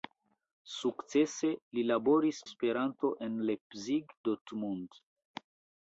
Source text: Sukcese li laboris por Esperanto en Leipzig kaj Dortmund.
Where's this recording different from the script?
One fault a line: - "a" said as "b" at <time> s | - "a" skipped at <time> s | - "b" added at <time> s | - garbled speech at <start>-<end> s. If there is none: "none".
- "por" skipped at 2.4 s
- "kaj" skipped at 4.2 s